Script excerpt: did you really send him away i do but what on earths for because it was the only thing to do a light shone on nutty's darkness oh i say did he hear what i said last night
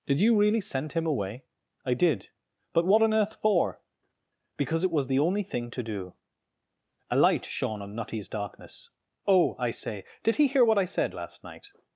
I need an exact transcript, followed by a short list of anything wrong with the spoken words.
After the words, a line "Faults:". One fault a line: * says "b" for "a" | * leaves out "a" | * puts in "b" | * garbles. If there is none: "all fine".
did you really send him away i did but what on earth for because it was the only thing to do a light shone on nutty's darkness oh i say did he hear what i said last night
Faults:
* says "did" for "do"
* says "earth" for "earths"